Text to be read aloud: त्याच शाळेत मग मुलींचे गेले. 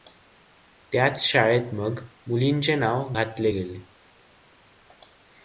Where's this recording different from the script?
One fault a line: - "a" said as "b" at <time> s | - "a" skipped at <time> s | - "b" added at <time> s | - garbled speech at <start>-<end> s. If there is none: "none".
- "नाव घातले" added at 2.8 s